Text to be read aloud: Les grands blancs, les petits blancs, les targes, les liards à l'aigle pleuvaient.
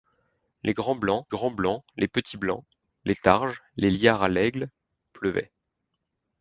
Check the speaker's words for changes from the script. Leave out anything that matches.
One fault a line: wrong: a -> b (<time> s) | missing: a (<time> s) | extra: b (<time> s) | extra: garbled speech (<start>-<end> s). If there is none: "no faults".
extra: grands blancs (1.3 s)